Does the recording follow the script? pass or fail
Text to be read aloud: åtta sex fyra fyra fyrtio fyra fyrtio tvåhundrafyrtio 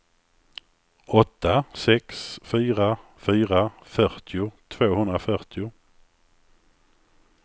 fail